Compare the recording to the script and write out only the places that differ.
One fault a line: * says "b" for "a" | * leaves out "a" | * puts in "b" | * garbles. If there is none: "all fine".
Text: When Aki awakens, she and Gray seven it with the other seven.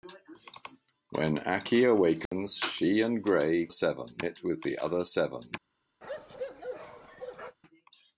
all fine